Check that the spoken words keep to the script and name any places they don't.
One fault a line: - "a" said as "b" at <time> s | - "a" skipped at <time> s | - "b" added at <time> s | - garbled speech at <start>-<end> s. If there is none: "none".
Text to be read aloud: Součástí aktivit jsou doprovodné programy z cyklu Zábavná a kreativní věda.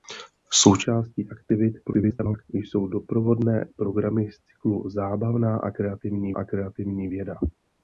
- garbled speech at 1.8-2.4 s
- "a kreativní" added at 6.3 s